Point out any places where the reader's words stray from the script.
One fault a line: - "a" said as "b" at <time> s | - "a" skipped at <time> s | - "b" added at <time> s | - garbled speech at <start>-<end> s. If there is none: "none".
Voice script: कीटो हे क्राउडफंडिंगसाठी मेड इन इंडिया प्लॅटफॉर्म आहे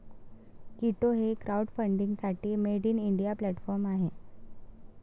none